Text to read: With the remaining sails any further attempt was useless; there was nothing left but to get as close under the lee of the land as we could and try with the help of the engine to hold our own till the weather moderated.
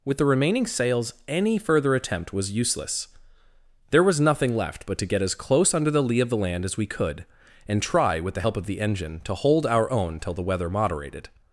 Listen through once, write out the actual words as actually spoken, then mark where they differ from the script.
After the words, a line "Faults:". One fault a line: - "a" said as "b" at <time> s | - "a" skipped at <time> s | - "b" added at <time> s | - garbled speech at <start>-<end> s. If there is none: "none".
With the remaining sails any further attempt was useless; there was nothing left but to get as close under the lee of the land as we could and try with the help of the engine to hold our own till the weather moderated.
Faults:
none